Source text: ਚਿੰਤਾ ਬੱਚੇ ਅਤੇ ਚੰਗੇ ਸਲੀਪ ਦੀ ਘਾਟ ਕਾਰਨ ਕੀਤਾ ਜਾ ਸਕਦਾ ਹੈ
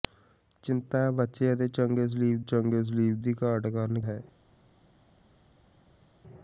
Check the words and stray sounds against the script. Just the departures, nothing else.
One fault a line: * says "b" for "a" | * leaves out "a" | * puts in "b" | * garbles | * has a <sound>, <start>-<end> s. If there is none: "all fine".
* puts in "ਚੰਗੇ ਸਲੀਪ"
* leaves out "ਕੀਤਾ ਜਾ ਸਕਦਾ"